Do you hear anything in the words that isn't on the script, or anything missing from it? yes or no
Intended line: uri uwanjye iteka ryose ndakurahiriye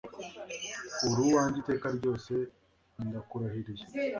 no